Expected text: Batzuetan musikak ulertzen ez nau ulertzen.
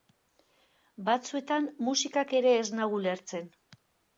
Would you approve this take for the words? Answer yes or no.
no